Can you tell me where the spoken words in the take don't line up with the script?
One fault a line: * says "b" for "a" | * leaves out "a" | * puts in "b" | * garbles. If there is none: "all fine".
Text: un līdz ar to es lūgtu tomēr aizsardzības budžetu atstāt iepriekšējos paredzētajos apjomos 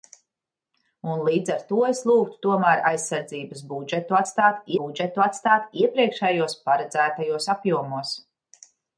* puts in "budžetu atstāt"